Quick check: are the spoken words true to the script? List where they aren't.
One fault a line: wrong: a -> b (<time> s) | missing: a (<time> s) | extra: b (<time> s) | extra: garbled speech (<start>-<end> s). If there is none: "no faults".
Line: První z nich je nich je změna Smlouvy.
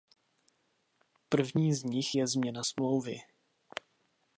missing: nich je (2.3 s)